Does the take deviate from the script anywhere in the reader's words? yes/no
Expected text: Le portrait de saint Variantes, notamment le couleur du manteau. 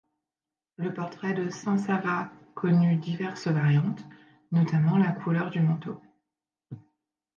yes